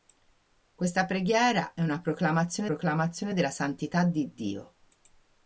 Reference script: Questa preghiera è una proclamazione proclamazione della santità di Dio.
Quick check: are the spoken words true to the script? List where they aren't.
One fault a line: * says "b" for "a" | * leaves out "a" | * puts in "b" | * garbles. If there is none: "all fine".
all fine